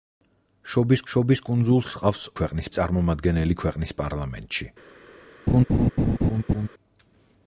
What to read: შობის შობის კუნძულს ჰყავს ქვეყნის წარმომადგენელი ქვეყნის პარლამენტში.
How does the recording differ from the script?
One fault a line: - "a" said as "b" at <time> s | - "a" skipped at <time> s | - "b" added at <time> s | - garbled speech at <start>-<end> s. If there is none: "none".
none